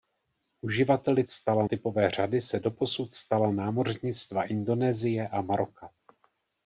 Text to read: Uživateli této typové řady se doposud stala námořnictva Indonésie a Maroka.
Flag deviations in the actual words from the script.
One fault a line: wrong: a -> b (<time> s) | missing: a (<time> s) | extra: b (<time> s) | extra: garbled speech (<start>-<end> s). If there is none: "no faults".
wrong: této -> stala (1.3 s)